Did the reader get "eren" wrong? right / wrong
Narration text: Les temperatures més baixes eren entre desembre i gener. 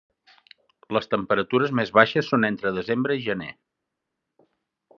wrong